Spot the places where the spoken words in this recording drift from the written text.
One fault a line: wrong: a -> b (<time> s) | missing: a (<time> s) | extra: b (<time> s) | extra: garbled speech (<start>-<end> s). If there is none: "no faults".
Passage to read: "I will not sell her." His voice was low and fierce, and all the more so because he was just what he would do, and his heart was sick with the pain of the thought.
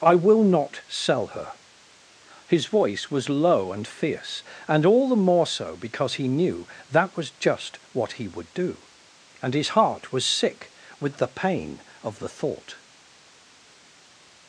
extra: knew that (6.3 s)